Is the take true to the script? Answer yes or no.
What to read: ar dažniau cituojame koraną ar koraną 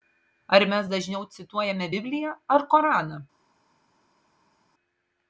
no